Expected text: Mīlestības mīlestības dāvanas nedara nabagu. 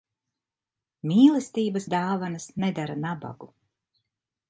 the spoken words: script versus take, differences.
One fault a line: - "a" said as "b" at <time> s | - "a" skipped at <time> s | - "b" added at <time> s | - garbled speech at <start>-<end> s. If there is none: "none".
- "mīlestības" skipped at 1.9 s